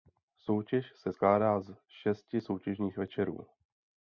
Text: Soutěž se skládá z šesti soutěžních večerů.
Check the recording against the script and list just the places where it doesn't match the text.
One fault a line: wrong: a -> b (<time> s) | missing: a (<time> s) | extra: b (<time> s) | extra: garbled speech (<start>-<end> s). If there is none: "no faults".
no faults